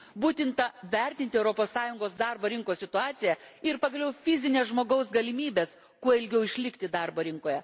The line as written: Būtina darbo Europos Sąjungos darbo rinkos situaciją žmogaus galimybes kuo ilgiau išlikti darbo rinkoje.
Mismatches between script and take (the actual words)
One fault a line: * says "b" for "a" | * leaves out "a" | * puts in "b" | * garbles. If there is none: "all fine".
* says "vertinti" for "darbo"
* puts in "ir pagaliau fizines"